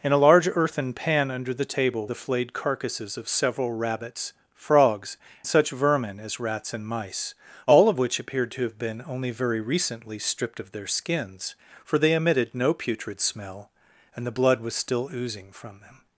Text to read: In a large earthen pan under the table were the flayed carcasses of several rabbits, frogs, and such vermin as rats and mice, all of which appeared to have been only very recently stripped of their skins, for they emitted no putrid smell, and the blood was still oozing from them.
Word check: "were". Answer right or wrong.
wrong